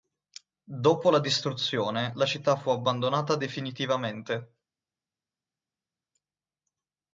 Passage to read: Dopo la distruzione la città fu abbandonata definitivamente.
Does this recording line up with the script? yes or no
yes